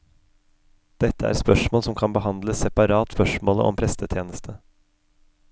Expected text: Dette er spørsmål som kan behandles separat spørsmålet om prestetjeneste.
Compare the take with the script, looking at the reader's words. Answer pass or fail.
pass